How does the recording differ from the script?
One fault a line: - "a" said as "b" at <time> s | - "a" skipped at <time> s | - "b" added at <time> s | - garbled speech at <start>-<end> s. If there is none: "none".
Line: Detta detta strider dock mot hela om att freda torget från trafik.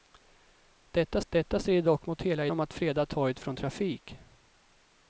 none